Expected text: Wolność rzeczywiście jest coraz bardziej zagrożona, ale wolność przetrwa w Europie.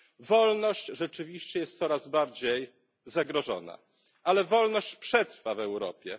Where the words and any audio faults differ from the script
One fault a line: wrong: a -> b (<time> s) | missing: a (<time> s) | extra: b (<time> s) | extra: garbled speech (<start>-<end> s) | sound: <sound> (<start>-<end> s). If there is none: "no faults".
no faults